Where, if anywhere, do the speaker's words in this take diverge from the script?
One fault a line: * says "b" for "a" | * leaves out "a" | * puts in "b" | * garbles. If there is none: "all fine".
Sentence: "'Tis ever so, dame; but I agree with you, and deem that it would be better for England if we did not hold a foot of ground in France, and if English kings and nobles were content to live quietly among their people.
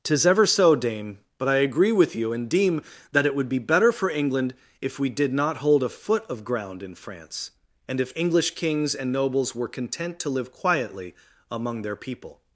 all fine